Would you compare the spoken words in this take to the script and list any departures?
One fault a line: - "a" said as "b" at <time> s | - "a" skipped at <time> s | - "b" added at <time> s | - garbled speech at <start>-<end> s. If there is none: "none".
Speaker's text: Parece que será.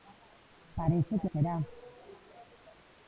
none